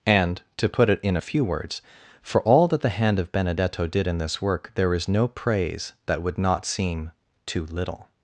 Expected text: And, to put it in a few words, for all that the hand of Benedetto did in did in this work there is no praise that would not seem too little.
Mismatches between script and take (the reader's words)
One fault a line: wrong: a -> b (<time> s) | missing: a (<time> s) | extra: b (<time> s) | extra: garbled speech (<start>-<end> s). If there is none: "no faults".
missing: did in (4.2 s)